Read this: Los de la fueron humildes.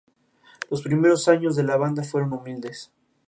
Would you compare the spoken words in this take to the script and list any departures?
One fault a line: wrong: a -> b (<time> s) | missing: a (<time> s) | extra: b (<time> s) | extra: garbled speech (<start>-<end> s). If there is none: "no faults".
extra: primeros años (0.8 s)
extra: banda (1.8 s)